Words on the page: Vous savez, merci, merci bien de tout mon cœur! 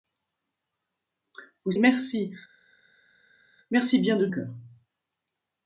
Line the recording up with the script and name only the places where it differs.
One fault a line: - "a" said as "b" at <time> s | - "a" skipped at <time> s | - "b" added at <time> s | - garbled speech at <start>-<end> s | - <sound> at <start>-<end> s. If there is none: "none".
- "savez" skipped at 1.7 s
- "tout mon" skipped at 4.3 s